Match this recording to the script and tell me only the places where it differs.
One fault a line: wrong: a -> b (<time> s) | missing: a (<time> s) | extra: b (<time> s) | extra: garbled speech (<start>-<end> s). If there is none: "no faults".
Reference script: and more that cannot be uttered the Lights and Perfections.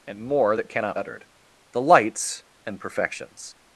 missing: be (1.0 s)